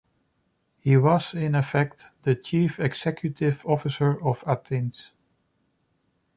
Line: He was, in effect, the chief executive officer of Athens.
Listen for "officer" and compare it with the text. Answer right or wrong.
right